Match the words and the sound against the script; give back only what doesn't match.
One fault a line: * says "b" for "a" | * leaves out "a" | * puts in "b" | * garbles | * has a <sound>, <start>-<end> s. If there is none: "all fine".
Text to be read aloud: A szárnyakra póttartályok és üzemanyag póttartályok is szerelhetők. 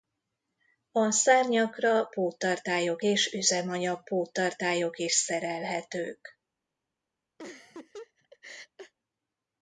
* has a laugh, 7.4-8.9 s